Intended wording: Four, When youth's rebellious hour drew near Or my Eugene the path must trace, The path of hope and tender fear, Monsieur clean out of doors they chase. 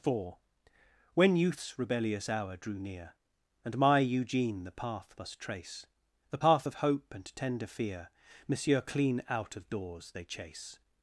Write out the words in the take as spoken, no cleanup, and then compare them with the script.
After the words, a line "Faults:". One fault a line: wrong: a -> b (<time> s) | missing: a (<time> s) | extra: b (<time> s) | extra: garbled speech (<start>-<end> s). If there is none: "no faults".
Four, When youth's rebellious hour drew near And my Eugene the path must trace, The path of hope and tender fear, Monsieur clean out of doors they chase.
Faults:
wrong: Or -> And (3.6 s)